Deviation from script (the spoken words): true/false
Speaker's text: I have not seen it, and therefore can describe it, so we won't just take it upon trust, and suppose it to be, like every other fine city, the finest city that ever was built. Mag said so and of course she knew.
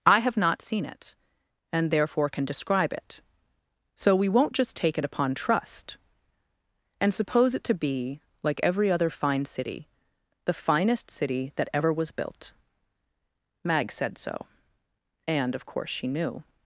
false